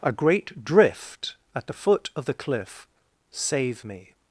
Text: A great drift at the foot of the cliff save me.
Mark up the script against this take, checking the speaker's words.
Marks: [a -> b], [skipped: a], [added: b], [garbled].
A great drift at the foot of the cliff save me.